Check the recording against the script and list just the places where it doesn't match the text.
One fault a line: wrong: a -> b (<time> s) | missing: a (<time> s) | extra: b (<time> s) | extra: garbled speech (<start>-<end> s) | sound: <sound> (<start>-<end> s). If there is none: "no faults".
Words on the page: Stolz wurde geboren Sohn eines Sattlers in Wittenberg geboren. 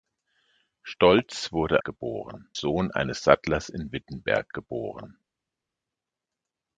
no faults